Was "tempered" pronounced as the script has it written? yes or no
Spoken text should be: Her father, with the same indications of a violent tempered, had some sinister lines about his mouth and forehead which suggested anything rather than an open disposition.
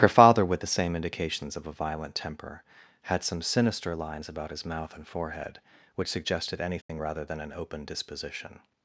no